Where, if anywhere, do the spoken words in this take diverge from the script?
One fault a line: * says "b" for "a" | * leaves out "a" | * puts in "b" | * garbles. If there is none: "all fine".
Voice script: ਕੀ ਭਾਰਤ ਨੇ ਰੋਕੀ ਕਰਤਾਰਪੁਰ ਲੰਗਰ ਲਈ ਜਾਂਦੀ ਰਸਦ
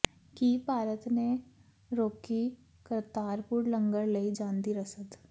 all fine